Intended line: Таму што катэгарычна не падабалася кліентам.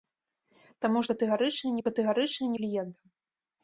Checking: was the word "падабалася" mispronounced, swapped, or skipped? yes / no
yes